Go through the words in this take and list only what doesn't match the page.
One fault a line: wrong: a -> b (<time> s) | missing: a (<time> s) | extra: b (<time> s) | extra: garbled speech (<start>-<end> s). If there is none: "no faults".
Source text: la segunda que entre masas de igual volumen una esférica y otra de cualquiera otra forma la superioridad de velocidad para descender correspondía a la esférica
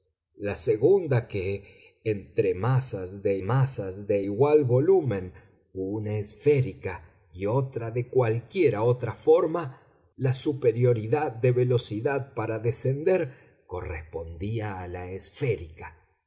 extra: masas de (3.4 s)